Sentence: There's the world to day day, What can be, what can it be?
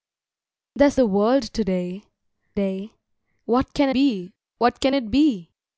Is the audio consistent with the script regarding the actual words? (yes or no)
yes